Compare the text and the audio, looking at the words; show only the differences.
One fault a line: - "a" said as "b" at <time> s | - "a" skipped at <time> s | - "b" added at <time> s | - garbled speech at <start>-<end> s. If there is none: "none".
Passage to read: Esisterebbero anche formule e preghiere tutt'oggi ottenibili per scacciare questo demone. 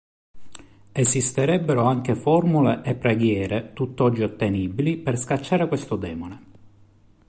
none